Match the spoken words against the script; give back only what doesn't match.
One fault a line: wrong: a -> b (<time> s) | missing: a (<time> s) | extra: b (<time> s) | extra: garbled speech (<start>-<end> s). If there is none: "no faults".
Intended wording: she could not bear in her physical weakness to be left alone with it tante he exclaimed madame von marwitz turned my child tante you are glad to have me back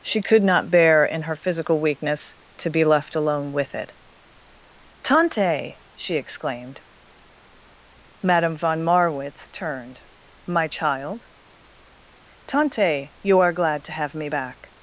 wrong: he -> she (6.0 s)